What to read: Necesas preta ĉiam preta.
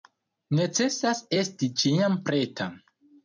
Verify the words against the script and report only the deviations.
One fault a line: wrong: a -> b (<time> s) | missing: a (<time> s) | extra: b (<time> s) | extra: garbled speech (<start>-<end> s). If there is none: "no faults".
wrong: preta -> esti (1.4 s)